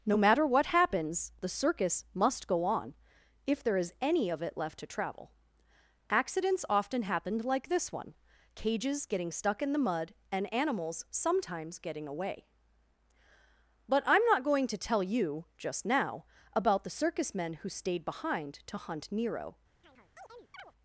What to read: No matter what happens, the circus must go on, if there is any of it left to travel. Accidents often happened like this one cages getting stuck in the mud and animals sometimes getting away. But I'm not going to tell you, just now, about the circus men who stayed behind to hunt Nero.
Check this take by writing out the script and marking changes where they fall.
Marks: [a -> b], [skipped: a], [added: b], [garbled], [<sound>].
No matter what happens, the circus must go on, if there is any of it left to travel. Accidents often happened like this one cages getting stuck in the mud and animals sometimes getting away. But I'm not going to tell you, just now, about the circus men who stayed behind to hunt Nero. [chirp]